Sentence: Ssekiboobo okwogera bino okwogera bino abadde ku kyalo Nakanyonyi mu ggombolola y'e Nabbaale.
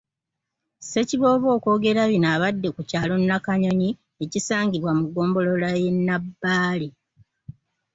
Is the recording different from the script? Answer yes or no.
yes